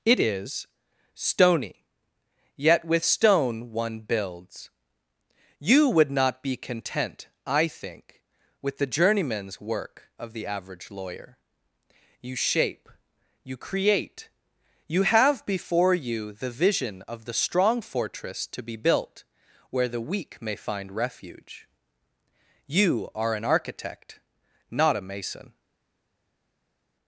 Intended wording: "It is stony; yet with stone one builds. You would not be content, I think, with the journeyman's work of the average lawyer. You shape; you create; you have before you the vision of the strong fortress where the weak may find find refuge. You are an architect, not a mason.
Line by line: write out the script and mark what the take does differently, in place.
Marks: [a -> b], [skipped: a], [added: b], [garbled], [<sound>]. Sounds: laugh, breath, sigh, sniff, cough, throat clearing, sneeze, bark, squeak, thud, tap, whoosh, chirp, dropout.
"It is stony; yet with stone one builds. You would not be content, I think, with the journeyman's work of the average lawyer. You shape; you create; you have before you the vision of the strong fortress [added: to be built] where the weak may find [skipped: find] refuge. You are an architect, not a mason.